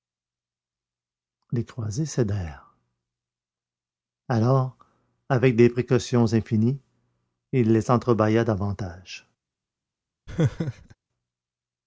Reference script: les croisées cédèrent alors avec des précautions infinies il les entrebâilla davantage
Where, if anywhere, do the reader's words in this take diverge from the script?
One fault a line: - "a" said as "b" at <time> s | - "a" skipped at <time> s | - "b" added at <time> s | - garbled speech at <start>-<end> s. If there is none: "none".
none